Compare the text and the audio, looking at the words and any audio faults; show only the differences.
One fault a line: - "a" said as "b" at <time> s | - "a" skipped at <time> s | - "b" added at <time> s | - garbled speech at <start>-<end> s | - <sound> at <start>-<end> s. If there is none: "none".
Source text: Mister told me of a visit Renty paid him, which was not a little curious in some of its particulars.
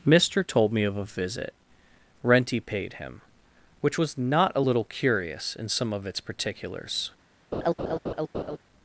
- laugh at 7.5-8.6 s